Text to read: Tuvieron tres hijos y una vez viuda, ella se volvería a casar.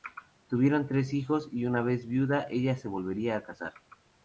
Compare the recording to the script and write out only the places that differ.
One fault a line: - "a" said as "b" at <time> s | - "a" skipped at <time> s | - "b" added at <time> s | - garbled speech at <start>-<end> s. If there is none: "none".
none